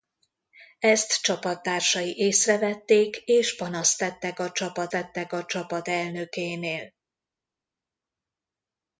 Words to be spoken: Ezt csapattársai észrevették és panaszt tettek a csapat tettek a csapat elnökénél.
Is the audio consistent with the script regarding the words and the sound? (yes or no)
yes